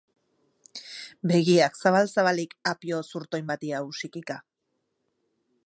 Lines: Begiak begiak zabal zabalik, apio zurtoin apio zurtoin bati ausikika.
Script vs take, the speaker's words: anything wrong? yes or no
yes